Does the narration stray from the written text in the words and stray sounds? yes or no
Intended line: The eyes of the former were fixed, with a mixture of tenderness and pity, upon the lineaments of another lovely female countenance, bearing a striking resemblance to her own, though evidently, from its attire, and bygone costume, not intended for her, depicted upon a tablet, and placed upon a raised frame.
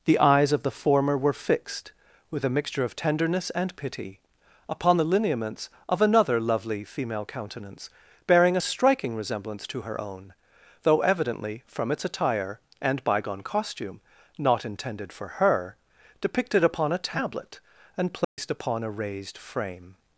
yes